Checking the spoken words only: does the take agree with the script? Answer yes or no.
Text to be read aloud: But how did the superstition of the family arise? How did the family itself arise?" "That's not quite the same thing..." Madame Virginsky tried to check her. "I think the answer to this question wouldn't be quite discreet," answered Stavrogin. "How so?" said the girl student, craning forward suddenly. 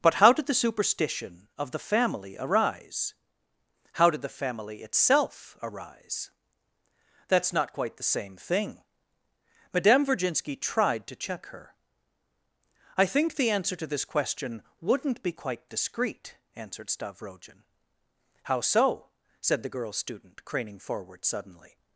yes